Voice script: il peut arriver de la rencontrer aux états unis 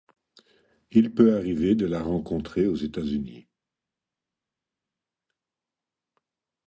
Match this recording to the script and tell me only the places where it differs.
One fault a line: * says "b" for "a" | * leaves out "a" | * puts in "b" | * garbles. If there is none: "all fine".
all fine